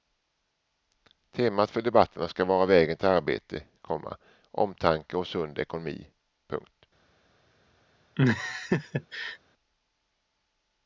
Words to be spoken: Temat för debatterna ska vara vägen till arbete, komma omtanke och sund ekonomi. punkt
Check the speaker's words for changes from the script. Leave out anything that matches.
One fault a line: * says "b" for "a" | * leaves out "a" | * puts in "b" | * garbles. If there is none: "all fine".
all fine